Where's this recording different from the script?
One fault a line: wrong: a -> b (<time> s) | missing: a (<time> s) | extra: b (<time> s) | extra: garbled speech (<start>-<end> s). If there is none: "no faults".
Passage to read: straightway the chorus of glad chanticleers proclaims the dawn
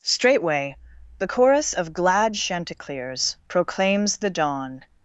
no faults